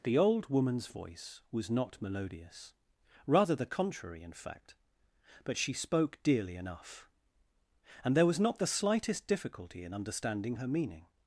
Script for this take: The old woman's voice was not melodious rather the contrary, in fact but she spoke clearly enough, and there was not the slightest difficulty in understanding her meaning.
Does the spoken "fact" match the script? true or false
true